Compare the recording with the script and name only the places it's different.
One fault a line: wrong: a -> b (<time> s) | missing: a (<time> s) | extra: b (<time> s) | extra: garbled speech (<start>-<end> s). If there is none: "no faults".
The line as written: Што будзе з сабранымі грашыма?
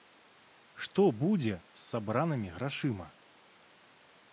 no faults